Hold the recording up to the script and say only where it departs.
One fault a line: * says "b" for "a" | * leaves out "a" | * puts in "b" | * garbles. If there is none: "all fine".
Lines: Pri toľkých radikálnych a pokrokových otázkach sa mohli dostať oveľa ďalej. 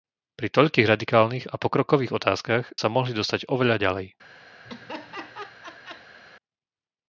all fine